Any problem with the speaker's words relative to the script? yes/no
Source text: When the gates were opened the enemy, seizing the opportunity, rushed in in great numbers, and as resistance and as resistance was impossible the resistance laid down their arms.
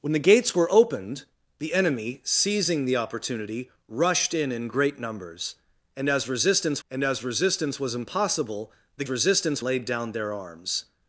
no